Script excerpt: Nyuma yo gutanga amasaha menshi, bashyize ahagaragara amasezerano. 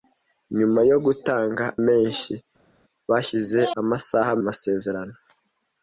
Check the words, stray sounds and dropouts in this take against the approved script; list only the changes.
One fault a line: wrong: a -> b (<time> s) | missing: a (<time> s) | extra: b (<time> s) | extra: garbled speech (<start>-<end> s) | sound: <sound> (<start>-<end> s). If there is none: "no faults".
missing: amasaha (1.6 s)
wrong: ahagaragara -> amasaha (3.8 s)